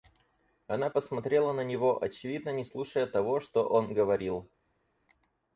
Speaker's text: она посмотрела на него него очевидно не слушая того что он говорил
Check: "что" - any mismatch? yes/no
no